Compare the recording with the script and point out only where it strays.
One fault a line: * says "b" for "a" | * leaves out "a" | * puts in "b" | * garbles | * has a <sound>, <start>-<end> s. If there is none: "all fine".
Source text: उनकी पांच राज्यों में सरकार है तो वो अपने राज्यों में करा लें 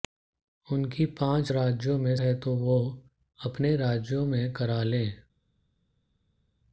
* leaves out "सरकार"